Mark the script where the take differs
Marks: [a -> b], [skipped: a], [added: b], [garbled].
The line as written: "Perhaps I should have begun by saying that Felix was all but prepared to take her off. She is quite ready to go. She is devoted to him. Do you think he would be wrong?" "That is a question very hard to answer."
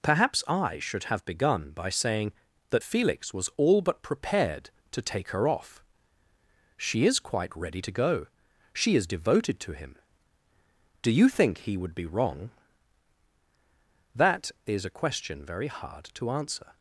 "Perhaps I should have begun by saying that Felix was all but prepared to take her off. She is quite ready to go. She is devoted to him. Do you think he would be wrong?" "That is a question very hard to answer."